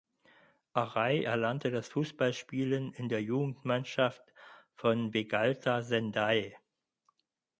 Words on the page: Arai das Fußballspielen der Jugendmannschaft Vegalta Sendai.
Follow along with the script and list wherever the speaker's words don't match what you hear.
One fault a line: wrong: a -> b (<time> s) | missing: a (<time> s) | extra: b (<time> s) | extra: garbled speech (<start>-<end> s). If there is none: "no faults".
extra: erlernte (1.2 s)
extra: in (2.9 s)
extra: von (4.7 s)